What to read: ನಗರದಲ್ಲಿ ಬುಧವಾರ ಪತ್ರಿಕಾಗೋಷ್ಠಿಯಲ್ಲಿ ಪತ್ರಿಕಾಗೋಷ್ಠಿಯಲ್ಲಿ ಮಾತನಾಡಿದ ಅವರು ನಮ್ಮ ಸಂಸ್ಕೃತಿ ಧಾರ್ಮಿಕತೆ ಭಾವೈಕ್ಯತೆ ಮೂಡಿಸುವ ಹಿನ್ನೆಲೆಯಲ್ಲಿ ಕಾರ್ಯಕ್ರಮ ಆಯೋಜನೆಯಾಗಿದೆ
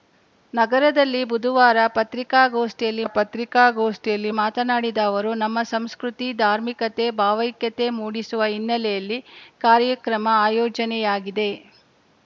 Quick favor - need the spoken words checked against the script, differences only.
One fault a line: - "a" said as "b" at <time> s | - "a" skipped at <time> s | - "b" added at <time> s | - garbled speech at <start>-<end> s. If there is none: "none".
none